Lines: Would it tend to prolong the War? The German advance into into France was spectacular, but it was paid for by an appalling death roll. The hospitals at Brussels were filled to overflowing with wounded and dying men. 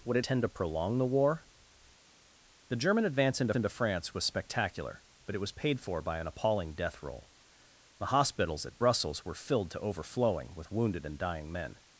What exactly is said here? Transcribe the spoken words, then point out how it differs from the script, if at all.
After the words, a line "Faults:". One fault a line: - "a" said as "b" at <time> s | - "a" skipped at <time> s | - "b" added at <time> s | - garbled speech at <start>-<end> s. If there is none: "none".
Would it tend to prolong the War? The German advance into into France was spectacular, but it was paid for by an appalling death roll. The hospitals at Brussels were filled to overflowing with wounded and dying men.
Faults:
none